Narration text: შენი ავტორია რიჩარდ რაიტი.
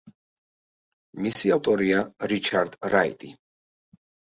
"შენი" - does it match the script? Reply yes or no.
no